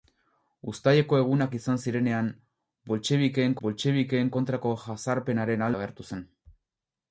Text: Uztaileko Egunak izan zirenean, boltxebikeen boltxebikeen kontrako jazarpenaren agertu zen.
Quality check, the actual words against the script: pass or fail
pass